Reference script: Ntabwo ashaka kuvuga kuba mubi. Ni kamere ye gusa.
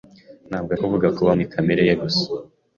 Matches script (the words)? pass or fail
fail